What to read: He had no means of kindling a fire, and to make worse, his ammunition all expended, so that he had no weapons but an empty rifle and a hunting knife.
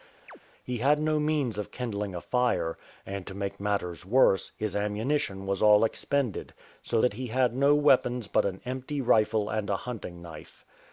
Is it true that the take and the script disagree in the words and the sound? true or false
true